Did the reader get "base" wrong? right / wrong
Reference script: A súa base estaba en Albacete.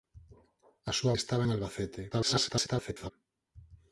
wrong